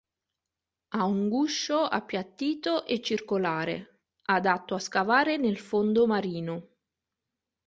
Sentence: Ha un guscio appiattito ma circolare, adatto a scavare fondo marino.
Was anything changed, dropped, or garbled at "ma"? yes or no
yes